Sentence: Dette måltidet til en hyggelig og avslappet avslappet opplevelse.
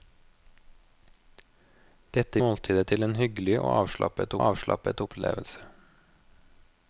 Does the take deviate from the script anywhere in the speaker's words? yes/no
no